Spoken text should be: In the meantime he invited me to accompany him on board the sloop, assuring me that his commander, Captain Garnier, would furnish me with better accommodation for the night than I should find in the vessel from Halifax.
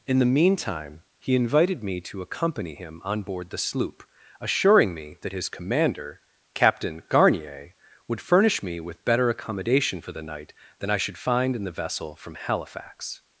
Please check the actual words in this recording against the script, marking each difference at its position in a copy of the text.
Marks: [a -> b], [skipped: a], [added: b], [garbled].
In the meantime he invited me to accompany him on board the sloop, assuring me that his commander, Captain Garnier, would furnish me with better accommodation for the night than I should find in the vessel from Halifax.